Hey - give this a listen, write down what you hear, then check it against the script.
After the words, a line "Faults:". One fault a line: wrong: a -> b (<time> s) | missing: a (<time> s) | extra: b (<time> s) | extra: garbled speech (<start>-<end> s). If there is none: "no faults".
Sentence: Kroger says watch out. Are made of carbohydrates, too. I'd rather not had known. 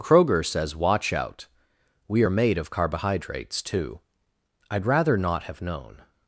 Kroger says watch out. We are made of carbohydrates, too. I'd rather not have known.
Faults:
extra: We (2.1 s)
wrong: had -> have (5.4 s)